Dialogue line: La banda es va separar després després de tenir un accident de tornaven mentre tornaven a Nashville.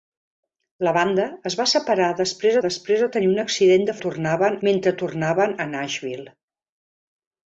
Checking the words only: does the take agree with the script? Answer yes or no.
yes